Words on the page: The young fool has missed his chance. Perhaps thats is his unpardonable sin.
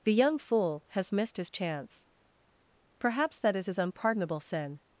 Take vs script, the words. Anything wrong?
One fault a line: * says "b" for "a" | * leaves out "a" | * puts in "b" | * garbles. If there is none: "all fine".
* says "that" for "thats"